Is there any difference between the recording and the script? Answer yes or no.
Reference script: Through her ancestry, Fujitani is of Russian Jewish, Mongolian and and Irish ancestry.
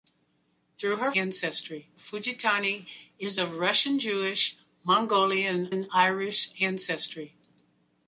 no